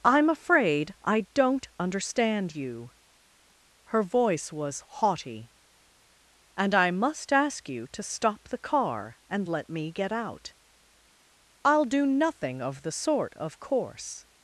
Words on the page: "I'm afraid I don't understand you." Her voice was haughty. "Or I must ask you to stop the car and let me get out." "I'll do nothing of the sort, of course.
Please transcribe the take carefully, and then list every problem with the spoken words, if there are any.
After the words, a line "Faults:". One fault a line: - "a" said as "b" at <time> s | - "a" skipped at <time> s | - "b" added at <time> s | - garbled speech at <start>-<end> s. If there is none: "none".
"I'm afraid I don't understand you." Her voice was haughty. "And I must ask you to stop the car and let me get out." "I'll do nothing of the sort, of course.
Faults:
- "Or" said as "And" at 6.6 s